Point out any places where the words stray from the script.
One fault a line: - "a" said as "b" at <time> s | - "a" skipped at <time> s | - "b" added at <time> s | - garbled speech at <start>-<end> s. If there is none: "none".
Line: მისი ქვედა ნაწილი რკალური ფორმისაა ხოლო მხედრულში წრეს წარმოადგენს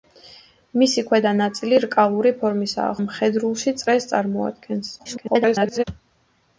- "ხოლო" skipped at 2.9 s
- garbled speech at 5.0-5.8 s